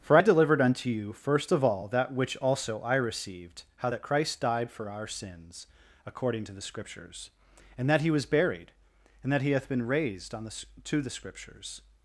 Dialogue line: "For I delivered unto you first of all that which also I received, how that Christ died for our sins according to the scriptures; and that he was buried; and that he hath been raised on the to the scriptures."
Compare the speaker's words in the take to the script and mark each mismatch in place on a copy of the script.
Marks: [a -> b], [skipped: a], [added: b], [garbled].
"For I delivered unto you first of all that which also I received, how that Christ died for our sins according to the scriptures; and that he was buried; and that he hath been raised on the to the scriptures."